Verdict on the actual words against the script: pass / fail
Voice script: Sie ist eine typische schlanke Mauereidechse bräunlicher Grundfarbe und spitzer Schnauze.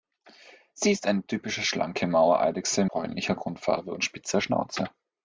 pass